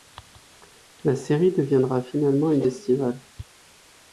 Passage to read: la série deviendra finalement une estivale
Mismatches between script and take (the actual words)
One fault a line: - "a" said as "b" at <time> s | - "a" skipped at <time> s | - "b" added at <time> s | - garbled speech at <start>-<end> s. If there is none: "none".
none